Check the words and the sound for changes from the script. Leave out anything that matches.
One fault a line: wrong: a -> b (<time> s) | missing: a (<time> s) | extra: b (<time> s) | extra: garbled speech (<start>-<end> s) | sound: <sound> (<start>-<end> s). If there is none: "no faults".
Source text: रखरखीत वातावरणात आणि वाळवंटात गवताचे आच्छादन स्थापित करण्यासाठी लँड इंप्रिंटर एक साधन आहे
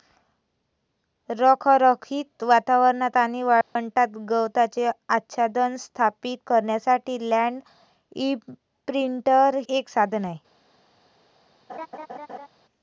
sound: dropout (3.6-3.8 s)
sound: laugh (11.7-12.5 s)